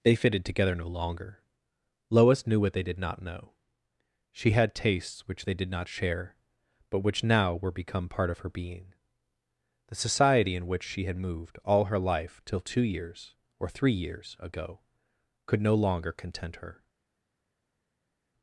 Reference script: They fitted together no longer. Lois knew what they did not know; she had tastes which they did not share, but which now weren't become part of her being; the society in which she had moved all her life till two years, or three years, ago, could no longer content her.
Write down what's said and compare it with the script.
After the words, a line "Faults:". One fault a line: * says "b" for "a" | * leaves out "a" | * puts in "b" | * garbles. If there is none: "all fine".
They fitted together no longer. Lois knew what they did not know; she had tastes which they did not share, but which now were become part of her being; the society in which she had moved all her life till two years, or three years, ago, could no longer content her.
Faults:
* says "were" for "weren't"